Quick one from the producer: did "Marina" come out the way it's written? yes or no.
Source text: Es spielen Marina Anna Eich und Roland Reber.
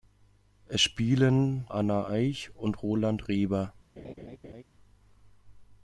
no